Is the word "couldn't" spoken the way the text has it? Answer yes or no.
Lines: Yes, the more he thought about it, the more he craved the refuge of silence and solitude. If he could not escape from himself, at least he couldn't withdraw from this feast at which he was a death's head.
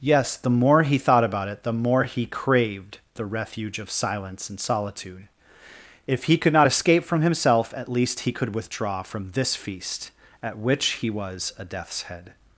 no